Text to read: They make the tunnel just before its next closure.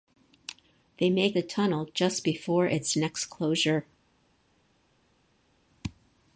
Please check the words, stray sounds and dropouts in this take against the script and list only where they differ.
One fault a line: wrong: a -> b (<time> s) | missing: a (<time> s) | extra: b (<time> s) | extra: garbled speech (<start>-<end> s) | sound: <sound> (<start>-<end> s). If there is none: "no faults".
no faults